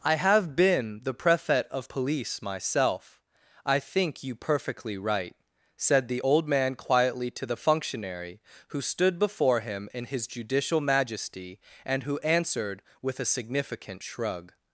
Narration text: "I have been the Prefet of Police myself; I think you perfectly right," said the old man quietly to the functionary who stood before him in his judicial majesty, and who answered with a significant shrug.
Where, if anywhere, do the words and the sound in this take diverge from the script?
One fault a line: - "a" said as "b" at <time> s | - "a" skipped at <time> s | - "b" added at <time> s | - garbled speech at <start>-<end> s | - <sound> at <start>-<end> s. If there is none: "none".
none